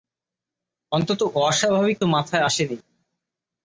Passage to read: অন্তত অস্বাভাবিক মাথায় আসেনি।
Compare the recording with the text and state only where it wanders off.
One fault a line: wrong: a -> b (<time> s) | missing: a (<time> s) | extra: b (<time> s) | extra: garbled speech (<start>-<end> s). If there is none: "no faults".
no faults